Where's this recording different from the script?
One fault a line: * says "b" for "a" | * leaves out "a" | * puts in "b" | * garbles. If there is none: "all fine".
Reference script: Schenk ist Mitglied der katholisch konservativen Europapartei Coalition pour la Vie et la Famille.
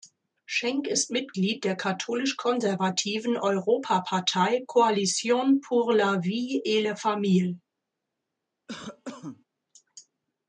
all fine